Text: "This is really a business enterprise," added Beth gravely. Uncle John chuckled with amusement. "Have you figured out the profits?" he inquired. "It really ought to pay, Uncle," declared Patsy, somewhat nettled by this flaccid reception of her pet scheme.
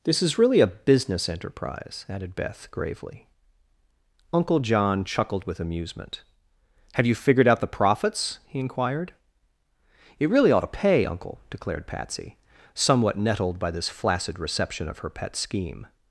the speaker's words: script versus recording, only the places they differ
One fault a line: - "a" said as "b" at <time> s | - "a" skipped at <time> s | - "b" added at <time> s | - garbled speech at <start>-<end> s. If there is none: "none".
none